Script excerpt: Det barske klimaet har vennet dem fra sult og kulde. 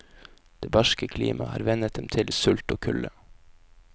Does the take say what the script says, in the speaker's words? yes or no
no